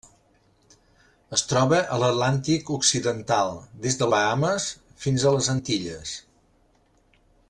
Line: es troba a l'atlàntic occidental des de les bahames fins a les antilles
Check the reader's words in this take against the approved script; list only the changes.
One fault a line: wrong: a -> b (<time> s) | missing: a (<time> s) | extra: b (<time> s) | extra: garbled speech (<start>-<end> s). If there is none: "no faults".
missing: les (4.1 s)